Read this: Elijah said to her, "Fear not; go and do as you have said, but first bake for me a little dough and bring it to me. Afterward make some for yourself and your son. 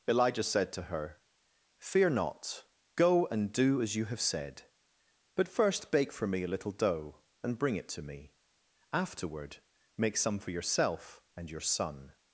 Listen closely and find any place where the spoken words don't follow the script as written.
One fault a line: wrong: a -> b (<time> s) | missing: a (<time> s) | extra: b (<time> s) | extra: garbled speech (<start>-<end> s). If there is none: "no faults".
no faults